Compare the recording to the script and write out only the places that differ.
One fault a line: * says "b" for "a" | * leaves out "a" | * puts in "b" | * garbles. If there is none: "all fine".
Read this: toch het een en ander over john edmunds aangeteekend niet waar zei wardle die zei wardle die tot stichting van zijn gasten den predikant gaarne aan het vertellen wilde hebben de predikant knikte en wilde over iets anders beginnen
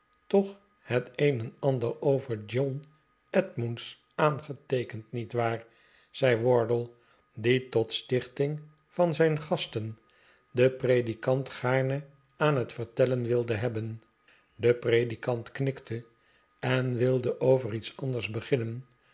* leaves out "zei wardle die"